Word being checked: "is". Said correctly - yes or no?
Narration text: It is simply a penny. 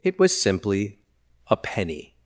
no